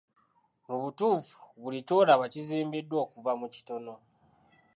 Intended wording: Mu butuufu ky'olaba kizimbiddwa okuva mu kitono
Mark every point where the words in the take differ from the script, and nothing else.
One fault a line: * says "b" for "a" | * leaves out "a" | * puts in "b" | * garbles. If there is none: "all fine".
* puts in "buli"